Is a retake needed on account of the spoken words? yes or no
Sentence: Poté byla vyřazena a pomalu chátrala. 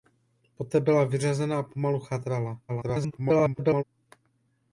yes